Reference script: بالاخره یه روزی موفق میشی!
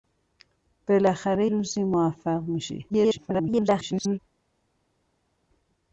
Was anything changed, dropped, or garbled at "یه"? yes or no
yes